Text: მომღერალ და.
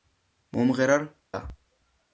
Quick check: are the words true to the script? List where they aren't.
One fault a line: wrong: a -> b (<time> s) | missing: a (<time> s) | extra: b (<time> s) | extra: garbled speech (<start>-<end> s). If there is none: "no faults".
no faults